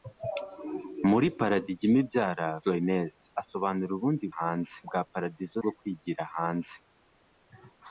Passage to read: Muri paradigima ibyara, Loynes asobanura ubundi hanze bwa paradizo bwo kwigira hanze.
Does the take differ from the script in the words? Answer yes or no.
no